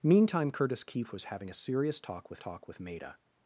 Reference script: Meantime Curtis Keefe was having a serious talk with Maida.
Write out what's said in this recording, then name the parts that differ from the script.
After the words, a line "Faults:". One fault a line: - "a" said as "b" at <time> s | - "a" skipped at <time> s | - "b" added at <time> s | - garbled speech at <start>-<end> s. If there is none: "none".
Meantime Curtis Keefe was having a serious talk with talk with Maida.
Faults:
- "talk with" added at 2.4 s